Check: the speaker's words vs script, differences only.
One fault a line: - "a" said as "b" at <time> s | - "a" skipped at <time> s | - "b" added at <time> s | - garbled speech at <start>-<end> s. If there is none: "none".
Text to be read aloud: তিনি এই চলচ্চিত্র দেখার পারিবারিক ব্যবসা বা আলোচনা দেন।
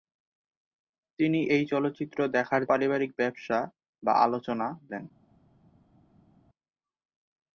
none